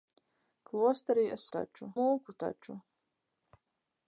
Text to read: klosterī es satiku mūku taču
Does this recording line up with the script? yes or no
no